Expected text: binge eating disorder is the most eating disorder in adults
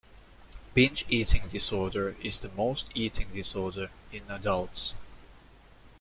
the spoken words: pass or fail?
pass